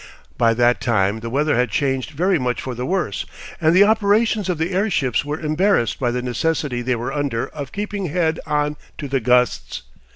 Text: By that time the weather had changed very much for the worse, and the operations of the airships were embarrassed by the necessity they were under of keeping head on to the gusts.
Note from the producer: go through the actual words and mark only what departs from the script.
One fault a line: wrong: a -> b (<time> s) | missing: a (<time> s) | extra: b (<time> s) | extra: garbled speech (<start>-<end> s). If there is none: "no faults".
no faults